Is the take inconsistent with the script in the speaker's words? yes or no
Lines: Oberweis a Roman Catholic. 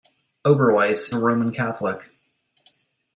no